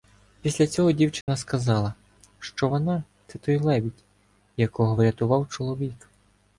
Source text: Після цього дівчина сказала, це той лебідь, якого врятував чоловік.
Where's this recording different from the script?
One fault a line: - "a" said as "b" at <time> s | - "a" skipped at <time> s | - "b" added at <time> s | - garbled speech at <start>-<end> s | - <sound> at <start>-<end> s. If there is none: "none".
- dropout at 1.2-1.3 s
- "що вона" added at 2.4 s